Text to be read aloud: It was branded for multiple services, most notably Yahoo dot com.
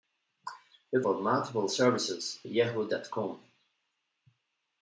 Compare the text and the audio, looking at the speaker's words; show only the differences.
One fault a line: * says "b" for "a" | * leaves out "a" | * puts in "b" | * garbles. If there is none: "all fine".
* leaves out "was branded"
* leaves out "most notably"